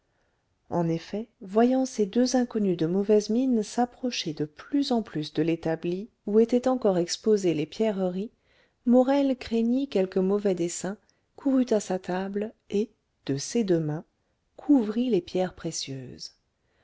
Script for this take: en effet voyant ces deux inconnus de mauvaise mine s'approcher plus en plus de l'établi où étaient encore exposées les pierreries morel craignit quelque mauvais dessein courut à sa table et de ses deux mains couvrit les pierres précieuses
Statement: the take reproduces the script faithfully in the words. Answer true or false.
false